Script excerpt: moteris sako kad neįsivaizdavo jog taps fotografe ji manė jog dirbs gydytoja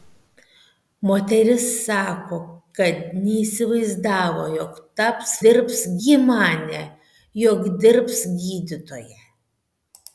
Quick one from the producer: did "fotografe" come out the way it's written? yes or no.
no